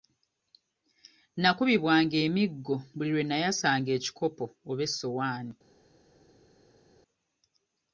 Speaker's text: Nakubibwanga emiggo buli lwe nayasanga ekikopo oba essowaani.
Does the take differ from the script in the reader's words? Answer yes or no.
no